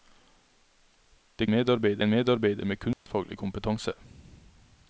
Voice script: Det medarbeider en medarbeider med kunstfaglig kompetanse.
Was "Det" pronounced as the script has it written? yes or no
yes